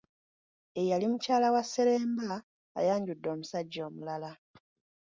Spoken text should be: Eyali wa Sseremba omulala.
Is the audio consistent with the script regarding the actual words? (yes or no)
no